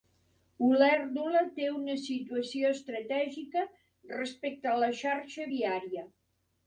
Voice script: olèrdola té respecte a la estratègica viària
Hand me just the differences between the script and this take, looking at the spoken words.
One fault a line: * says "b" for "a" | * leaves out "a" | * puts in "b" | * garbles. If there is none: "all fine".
* puts in "una situació estratègica"
* says "xarxa" for "estratègica"